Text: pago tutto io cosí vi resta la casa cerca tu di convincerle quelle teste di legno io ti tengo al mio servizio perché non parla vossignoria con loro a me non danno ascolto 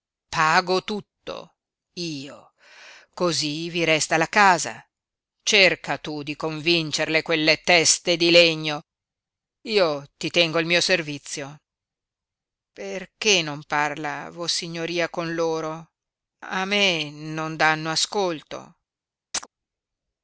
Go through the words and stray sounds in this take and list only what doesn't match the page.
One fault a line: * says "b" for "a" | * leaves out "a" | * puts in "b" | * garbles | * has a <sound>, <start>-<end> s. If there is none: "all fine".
* has a chirp, 19.3-19.5 s